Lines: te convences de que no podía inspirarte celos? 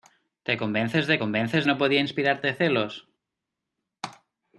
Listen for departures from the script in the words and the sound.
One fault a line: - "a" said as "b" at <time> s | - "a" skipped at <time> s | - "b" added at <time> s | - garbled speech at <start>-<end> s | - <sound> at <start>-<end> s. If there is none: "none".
- "que" said as "convences" at 1.2 s